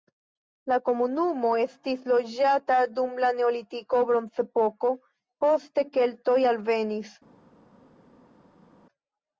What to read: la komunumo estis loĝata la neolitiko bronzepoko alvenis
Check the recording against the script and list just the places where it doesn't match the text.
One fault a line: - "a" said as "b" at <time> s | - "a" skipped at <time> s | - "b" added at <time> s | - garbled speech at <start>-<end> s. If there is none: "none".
- "dum" added at 3.0 s
- "poste keltoj" added at 5.5 s